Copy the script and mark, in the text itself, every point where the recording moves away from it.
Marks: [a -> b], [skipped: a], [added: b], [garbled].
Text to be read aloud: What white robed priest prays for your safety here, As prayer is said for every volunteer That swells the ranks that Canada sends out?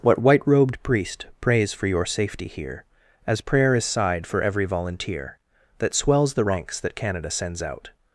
What white robed priest prays for your safety here, As prayer is [said -> sighed] for every volunteer That swells the ranks that Canada sends out?